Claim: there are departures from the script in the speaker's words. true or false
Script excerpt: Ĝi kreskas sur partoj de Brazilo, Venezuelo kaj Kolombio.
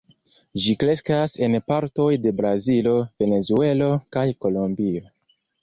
true